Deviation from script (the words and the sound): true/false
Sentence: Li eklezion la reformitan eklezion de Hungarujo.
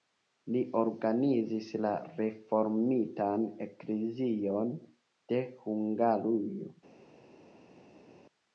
true